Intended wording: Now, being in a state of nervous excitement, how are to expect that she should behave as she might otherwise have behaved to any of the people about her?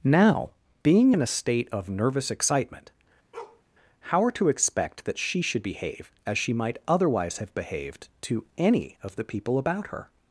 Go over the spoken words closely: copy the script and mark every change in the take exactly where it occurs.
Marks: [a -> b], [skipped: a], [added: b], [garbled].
Now, being in a state of nervous excitement, how are to expect that she should behave as she might otherwise have behaved to any of the people about her?